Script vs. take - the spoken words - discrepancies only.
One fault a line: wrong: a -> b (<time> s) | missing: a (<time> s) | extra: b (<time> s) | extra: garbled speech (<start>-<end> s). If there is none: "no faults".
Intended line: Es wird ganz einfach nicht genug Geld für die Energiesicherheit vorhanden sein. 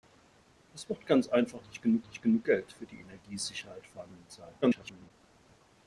extra: nicht genug (2.1 s)
extra: garbled speech (4.6-5.1 s)